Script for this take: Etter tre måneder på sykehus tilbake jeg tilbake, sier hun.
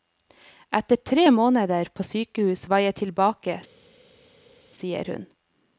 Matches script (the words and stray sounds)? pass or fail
fail